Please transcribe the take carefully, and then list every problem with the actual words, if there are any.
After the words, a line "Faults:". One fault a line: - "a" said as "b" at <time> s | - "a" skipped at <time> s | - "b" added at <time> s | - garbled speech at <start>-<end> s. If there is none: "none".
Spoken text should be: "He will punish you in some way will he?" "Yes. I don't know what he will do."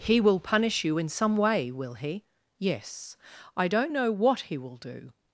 "He will punish you in some way will he?" "Yes. I don't know what he will do."
Faults:
none